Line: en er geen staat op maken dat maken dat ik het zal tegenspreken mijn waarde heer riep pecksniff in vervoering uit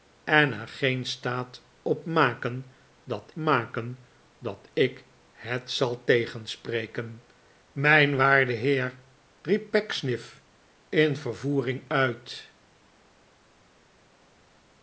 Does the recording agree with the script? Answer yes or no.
yes